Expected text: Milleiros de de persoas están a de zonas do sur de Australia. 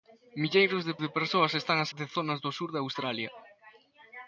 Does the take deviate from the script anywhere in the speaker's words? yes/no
no